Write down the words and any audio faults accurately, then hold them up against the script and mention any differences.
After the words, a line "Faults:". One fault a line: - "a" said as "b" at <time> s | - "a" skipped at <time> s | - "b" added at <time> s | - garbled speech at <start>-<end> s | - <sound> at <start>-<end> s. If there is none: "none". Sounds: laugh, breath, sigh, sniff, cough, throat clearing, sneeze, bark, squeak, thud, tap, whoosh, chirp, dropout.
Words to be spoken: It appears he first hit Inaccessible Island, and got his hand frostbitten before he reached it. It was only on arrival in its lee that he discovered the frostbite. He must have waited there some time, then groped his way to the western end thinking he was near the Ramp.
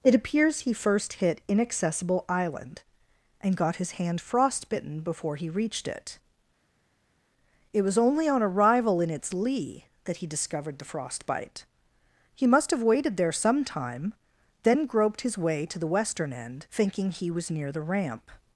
It appears he first hit Inaccessible Island, and got his hand frostbitten before he reached it. It was only on arrival in its lee that he discovered the frostbite. He must have waited there some time, then groped his way to the western end thinking he was near the Ramp.
Faults:
none